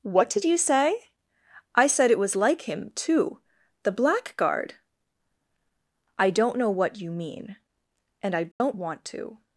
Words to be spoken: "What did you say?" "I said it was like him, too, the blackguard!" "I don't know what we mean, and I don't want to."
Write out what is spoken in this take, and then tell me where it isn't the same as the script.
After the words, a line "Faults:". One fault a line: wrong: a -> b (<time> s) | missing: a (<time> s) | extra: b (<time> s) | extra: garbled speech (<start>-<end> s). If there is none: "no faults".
"What did you say?" "I said it was like him, too, the blackguard!" "I don't know what you mean, and I don't want to."
Faults:
wrong: we -> you (7.0 s)